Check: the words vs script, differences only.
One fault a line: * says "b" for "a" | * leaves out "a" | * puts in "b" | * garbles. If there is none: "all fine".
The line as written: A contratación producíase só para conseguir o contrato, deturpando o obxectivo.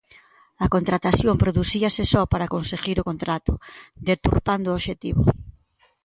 all fine